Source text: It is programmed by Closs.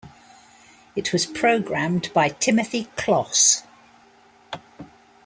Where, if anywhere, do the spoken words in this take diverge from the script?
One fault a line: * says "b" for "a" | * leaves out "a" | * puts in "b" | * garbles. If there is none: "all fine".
* says "was" for "is"
* puts in "Timothy"